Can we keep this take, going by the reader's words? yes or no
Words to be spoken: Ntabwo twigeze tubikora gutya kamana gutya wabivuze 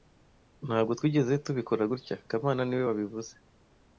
no